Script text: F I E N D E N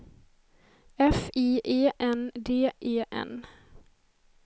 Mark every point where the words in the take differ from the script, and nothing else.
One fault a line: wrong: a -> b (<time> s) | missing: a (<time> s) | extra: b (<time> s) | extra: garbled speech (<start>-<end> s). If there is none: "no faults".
no faults